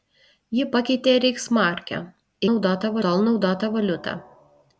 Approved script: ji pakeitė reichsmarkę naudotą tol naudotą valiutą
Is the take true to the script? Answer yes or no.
yes